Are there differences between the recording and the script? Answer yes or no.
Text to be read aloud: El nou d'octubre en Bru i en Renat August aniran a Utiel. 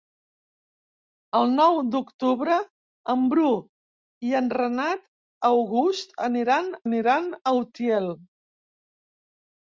yes